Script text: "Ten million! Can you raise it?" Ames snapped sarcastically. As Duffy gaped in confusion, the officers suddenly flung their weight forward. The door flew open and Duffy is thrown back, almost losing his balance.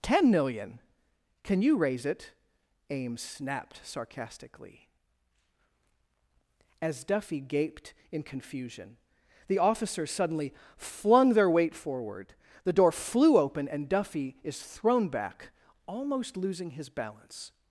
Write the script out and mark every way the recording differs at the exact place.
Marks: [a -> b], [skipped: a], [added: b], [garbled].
"Ten million! Can you raise it?" Ames snapped sarcastically. As Duffy gaped in confusion, the officers suddenly flung their weight forward. The door flew open and Duffy is thrown back, almost losing his balance.